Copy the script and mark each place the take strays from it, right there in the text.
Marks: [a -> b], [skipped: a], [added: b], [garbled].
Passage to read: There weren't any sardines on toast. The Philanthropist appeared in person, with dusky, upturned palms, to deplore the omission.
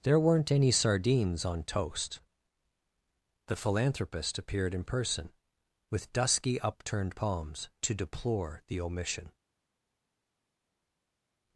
There weren't any sardines on toast. The Philanthropist appeared in person, with dusky, upturned palms, to deplore the omission.